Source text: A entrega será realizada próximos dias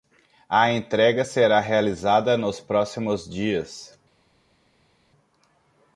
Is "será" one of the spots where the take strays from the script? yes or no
no